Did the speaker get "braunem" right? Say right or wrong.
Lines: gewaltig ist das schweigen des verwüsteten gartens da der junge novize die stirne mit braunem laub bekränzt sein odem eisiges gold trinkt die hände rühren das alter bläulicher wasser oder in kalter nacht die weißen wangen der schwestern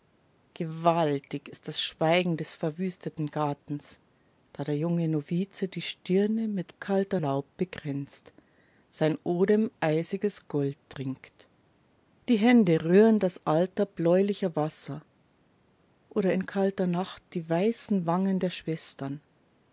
wrong